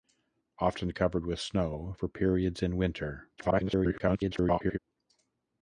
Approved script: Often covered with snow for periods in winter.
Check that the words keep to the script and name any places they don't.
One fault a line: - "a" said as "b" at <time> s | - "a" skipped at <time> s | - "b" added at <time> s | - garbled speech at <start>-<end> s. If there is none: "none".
- garbled speech at 3.4-4.8 s